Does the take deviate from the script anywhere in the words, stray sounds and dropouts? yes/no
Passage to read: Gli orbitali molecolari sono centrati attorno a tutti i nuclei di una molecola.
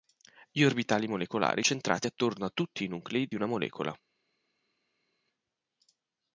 yes